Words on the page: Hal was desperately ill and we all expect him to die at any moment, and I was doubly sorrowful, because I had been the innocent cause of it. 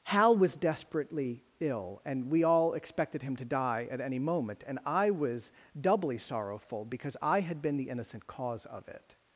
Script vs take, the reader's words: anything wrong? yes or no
yes